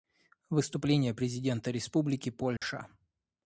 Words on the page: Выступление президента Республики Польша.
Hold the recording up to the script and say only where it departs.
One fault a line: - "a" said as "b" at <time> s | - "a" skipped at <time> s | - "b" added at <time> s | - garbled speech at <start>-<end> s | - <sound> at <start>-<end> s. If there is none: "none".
- dropout at 2.6-2.6 s